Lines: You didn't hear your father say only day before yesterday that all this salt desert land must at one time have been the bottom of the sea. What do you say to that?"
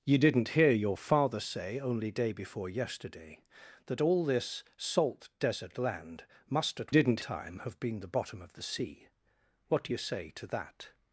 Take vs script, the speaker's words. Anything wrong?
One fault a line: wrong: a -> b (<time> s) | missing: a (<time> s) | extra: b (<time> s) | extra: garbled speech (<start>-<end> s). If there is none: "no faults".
wrong: one -> didn't (6.9 s)